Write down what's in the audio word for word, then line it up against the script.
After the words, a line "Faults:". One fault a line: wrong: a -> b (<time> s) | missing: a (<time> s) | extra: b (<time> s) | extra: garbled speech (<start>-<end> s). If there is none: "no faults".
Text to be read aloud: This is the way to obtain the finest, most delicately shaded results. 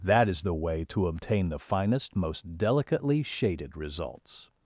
That is the way to obtain the finest, most delicately shaded results.
Faults:
wrong: This -> That (0.0 s)